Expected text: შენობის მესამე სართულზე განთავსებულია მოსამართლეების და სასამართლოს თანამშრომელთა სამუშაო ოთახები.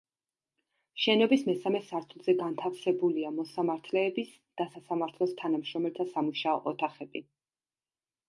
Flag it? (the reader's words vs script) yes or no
no